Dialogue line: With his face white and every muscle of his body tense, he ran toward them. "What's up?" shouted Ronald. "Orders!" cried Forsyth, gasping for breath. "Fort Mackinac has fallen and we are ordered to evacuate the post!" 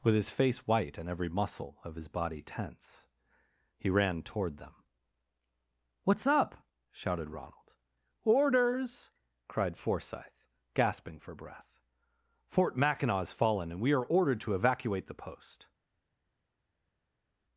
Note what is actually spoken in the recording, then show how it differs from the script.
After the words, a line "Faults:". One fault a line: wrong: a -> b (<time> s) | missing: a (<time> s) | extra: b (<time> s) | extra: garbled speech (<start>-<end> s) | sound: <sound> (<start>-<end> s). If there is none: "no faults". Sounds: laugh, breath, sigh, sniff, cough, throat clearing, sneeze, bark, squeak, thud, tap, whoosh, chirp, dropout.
With his face white and every muscle of his body tense, he ran toward them. "What's up?" shouted Ronald. "Orders!" cried Forsyth, gasping for breath. "Fort Mackinac has fallen and we are ordered to evacuate the post!"
Faults:
no faults